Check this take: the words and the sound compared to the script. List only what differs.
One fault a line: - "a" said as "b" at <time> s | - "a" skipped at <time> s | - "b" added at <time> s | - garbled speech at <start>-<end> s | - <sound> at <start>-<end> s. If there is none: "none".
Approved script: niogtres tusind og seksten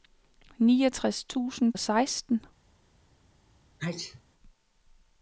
- sneeze at 3.8-4.2 s